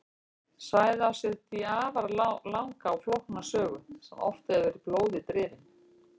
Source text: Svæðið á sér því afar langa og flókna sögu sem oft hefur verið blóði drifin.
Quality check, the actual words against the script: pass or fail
pass